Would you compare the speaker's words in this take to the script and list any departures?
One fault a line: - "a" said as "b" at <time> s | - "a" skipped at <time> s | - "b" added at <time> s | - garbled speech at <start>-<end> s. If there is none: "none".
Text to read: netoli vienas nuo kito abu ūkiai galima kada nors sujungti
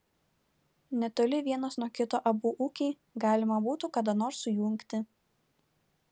- "būtų" added at 3.7 s